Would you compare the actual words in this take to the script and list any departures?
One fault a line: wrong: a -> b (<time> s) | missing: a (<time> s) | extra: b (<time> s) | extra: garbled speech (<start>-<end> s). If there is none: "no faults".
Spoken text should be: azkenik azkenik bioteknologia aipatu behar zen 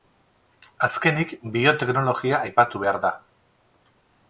missing: azkenik (1.4 s)
wrong: zen -> da (3.1 s)